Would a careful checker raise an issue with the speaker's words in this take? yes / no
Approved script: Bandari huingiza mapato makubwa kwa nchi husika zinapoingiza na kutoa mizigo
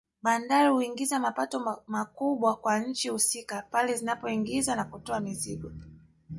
yes